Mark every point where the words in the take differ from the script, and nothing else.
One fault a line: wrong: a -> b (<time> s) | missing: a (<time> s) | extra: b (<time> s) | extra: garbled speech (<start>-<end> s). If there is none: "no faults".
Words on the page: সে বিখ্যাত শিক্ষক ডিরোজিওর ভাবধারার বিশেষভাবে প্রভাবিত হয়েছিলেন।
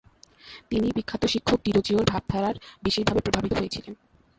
wrong: সে -> তিনি (0.7 s)